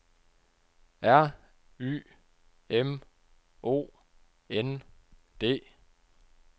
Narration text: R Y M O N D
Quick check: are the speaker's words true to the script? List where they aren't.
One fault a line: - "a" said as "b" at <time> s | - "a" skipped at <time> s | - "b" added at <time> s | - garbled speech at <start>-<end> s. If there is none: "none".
none